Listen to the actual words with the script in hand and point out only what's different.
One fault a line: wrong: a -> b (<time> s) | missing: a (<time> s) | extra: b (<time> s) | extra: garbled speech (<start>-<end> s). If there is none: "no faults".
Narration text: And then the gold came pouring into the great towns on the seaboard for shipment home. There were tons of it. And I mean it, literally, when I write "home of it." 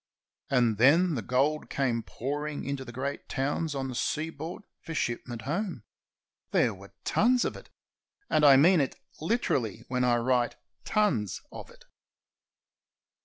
wrong: home -> tons (10.8 s)